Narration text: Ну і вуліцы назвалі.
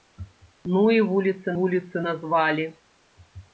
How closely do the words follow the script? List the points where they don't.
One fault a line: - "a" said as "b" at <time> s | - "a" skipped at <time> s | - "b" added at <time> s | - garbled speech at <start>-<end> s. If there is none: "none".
- "вуліцы" added at 1.6 s